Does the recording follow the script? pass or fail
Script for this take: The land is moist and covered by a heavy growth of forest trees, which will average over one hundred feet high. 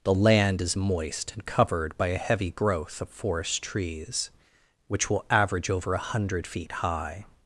fail